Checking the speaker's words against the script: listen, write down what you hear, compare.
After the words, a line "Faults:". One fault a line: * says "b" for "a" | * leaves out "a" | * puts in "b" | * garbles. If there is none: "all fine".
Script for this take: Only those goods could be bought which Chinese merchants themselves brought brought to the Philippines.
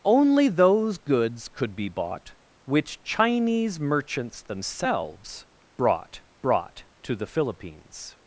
Only those goods could be bought which Chinese merchants themselves brought brought to the Philippines.
Faults:
all fine